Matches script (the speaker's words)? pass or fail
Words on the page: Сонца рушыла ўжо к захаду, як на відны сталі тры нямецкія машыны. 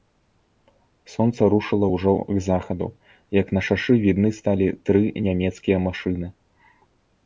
fail